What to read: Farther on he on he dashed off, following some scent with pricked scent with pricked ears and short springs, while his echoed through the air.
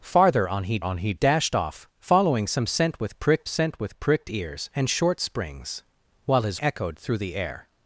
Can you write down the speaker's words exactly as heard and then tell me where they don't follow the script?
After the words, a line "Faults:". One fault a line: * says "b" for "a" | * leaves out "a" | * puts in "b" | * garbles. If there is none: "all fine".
Farther on he on he dashed off, following some scent with pricked scent with pricked ears and short springs, while his echoed through the air.
Faults:
all fine